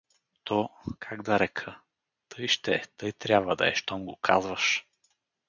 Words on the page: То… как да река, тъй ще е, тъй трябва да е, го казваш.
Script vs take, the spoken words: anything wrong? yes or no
yes